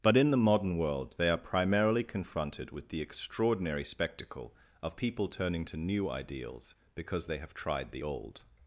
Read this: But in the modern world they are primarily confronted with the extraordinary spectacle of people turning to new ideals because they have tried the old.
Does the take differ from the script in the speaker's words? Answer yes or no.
no